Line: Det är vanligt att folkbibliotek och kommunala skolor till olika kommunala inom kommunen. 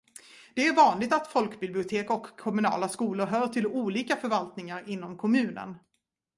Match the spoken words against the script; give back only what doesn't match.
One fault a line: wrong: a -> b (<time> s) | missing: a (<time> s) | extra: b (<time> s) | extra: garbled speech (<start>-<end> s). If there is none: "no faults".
extra: hör (3.3 s)
wrong: kommunala -> förvaltningar (4.2 s)